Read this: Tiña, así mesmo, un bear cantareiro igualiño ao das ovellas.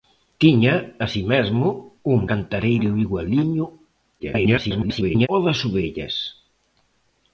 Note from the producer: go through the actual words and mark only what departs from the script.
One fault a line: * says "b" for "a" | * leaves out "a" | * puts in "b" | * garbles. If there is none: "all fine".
* leaves out "bear"
* garbles